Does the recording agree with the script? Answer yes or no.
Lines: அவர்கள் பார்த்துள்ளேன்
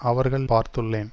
yes